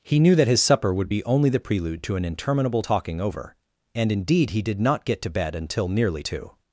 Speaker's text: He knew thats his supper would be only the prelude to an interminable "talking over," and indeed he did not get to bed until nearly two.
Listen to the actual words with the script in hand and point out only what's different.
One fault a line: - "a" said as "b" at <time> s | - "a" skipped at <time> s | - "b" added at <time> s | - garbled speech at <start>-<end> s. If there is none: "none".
- "thats" said as "that" at 0.3 s